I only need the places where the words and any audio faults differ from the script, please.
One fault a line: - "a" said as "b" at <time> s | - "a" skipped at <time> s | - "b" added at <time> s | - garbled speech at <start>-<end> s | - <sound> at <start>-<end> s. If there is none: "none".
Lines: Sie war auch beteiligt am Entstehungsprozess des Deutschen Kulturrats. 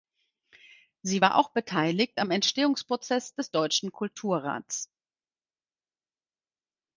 none